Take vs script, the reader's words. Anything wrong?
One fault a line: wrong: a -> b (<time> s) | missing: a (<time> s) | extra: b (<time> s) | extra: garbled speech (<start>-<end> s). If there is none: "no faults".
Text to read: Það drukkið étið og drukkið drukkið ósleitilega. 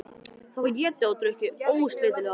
wrong: drukkið -> var (0.6 s)
missing: drukkið (1.7 s)